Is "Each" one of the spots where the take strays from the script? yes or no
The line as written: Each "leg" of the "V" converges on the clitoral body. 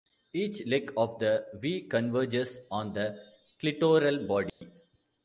no